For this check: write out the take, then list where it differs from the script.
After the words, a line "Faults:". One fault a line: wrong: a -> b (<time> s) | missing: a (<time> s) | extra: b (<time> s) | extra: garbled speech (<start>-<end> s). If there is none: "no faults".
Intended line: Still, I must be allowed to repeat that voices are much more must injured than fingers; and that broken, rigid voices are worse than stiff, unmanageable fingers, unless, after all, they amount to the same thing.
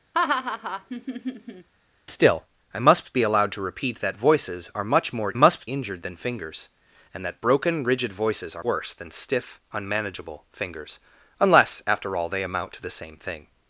Still, I must be allowed to repeat that voices are much more must injured than fingers; and that broken, rigid voices are worse than stiff, unmanageable fingers, unless, after all, they amount to the same thing.
Faults:
no faults